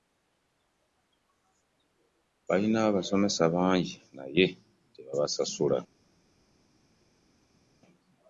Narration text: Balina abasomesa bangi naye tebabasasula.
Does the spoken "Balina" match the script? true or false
true